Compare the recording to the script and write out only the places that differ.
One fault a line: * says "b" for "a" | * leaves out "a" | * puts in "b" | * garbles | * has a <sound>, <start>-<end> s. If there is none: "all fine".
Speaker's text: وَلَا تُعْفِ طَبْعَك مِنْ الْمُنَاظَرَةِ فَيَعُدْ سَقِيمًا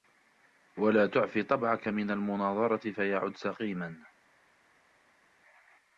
all fine